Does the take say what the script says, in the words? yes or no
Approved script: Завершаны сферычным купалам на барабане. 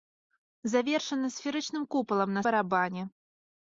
yes